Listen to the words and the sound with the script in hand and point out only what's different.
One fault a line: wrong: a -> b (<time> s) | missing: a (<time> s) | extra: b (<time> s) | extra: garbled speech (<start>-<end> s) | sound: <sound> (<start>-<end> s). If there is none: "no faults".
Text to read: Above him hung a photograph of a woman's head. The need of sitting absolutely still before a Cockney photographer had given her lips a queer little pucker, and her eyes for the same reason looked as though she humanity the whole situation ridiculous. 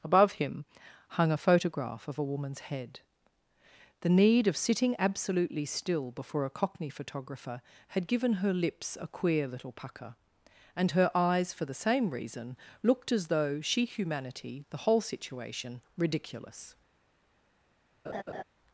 sound: laugh (18.0-18.4 s)